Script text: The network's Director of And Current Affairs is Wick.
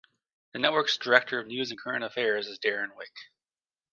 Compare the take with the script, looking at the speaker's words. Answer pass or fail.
fail